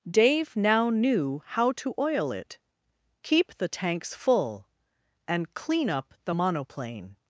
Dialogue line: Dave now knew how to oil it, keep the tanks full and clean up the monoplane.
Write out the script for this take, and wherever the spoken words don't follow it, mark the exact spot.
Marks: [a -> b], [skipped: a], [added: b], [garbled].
Dave now knew how to oil it, keep the tanks full and clean up the monoplane.